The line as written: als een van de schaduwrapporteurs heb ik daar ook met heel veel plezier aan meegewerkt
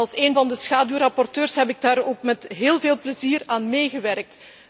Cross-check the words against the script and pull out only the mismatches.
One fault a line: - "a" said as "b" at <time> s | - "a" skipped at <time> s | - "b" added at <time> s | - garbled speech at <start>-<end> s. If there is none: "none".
none